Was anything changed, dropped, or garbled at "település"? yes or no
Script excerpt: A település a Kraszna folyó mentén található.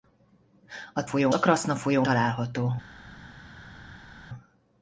yes